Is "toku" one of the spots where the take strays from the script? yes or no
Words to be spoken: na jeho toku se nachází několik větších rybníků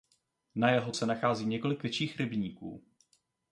yes